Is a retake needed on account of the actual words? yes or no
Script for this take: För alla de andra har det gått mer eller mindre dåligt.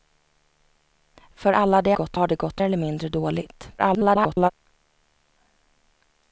yes